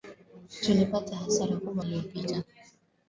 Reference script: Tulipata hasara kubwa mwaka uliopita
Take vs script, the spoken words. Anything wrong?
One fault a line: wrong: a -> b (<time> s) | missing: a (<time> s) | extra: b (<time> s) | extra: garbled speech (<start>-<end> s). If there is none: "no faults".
missing: mwaka (1.9 s)